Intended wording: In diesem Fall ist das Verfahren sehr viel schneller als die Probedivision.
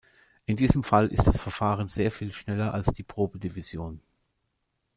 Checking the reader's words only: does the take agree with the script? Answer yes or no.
yes